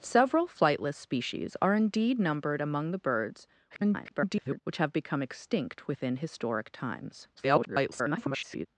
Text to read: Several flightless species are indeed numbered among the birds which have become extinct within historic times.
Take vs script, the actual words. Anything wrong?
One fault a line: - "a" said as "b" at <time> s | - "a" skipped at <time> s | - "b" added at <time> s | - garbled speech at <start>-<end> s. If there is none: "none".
- garbled speech at 3.7-4.6 s
- garbled speech at 7.4-8.7 s